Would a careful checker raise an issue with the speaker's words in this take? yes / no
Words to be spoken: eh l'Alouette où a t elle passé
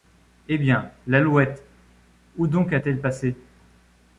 yes